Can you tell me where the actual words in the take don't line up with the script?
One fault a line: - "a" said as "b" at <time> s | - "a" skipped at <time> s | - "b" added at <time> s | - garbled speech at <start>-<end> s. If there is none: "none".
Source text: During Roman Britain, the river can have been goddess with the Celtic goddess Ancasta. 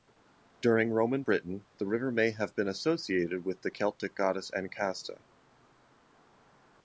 - "can" said as "may" at 2.1 s
- "goddess" said as "associated" at 2.7 s